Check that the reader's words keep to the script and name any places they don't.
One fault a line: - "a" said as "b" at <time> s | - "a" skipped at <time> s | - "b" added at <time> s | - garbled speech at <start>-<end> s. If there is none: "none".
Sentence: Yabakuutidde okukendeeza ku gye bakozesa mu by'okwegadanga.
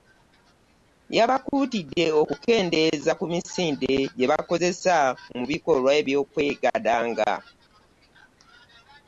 - "misinde" added at 3.3 s
- "bikolwa" added at 5.5 s